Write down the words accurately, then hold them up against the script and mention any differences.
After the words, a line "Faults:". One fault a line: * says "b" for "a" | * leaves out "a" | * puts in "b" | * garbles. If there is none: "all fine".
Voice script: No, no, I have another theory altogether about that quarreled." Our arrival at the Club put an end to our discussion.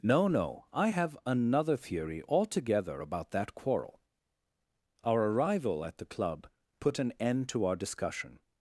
No, no, I have another theory altogether about that quarrel." Our arrival at the Club put an end to our discussion.
Faults:
* says "quarrel" for "quarreled"